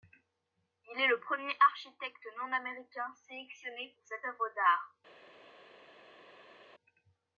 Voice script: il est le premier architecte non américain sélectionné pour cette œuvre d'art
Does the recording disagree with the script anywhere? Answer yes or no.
no